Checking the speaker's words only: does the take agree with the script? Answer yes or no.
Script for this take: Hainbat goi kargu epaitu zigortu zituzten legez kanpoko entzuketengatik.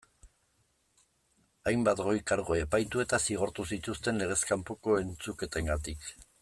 no